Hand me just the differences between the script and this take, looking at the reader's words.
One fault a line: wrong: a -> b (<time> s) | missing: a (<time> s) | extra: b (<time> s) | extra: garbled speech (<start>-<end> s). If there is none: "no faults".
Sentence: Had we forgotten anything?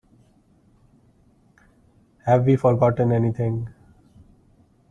wrong: Had -> Have (2.2 s)